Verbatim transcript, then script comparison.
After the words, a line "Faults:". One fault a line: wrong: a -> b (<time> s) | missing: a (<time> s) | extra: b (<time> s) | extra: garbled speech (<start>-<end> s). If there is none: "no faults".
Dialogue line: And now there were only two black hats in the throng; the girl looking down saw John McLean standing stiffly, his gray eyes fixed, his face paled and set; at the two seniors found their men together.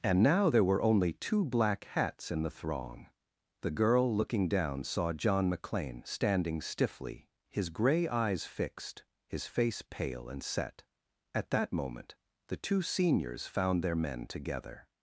And now there were only two black hats in the throng; the girl looking down saw John McLean standing stiffly, his gray eyes fixed, his face pale and set; at that moment the two seniors found their men together.
Faults:
wrong: paled -> pale (9.9 s)
extra: that moment (11.5 s)